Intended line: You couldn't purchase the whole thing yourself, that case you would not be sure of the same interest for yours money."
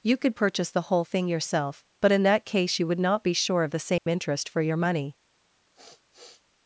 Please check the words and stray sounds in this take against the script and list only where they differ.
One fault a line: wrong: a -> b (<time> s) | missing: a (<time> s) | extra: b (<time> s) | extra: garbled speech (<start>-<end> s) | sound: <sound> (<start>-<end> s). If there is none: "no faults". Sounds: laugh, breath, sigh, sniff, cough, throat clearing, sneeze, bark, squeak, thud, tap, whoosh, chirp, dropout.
wrong: couldn't -> could (0.2 s)
extra: but in (2.0 s)
sound: dropout (4.0-4.1 s)
wrong: yours -> your (4.6 s)
sound: sniff (5.7-6.4 s)